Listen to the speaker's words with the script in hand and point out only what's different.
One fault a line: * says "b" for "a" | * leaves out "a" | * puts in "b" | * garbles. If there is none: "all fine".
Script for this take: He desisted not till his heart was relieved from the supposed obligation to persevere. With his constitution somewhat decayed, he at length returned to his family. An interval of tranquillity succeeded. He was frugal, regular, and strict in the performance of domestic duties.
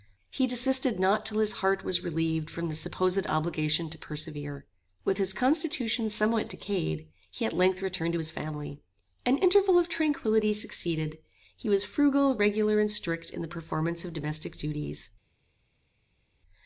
all fine